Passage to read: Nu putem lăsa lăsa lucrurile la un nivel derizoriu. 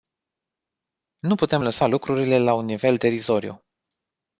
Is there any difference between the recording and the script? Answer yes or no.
yes